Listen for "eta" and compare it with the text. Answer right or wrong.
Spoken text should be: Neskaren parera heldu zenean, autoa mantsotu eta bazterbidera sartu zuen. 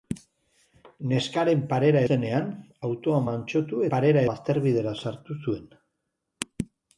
wrong